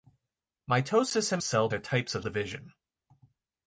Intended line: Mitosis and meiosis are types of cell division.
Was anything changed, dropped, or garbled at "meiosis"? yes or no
yes